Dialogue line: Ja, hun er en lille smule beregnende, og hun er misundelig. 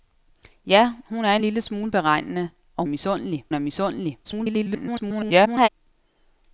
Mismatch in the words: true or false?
true